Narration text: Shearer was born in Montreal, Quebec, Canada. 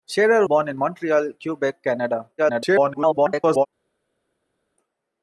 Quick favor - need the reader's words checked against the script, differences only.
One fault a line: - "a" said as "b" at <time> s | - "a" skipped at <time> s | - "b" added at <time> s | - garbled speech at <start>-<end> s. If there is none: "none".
- "was" skipped at 0.5 s
- garbled speech at 2.4-3.7 s